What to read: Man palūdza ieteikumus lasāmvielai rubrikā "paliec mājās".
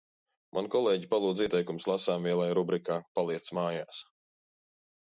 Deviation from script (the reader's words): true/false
true